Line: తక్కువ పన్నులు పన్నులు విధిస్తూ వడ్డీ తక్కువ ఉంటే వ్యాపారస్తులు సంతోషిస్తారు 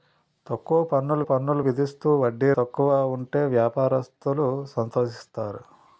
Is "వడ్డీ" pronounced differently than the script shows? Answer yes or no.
no